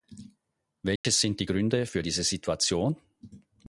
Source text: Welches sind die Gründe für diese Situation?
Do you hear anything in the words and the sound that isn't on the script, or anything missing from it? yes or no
yes